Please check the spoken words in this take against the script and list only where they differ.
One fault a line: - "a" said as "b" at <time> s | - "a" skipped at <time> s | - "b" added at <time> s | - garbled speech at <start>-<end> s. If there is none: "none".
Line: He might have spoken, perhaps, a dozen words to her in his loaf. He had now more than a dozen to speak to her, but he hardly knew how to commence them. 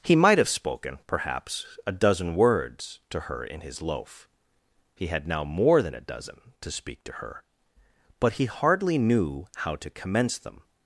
none